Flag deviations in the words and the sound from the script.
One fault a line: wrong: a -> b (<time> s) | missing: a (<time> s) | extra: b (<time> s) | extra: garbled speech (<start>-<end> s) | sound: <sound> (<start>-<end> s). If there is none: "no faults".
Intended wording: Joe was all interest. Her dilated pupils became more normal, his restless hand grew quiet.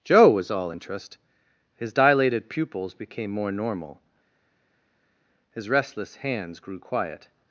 wrong: Her -> His (1.8 s)
wrong: hand -> hands (6.2 s)